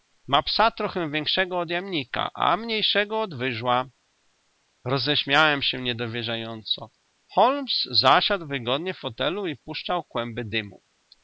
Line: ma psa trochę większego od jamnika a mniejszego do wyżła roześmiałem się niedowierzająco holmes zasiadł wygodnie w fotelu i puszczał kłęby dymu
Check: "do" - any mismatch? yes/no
yes